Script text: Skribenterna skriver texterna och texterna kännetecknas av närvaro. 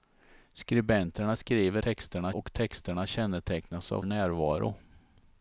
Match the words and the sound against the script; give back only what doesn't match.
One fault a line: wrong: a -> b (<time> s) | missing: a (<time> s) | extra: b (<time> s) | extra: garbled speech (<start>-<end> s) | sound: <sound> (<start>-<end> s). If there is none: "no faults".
no faults